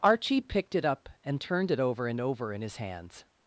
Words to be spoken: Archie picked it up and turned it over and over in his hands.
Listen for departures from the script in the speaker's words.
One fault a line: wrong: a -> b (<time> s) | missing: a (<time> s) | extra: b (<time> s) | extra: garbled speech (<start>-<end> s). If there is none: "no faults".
no faults